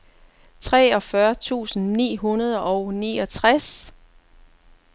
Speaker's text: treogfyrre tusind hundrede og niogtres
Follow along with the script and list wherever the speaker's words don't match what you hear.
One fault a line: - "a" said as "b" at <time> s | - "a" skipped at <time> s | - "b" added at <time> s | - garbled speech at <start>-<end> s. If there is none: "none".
- "ni" added at 1.9 s